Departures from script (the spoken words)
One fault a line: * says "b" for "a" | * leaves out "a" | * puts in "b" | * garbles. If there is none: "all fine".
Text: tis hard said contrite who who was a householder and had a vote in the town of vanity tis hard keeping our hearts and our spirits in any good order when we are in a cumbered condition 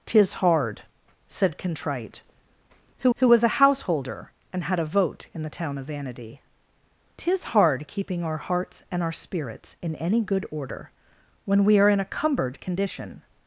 all fine